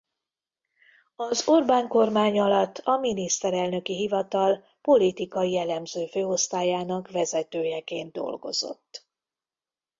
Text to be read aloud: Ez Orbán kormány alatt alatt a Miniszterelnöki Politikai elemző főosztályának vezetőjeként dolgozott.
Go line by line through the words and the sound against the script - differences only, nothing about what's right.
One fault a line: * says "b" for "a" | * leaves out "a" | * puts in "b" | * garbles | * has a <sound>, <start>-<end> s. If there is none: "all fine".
* says "Az" for "Ez"
* leaves out "alatt"
* puts in "Hivatal"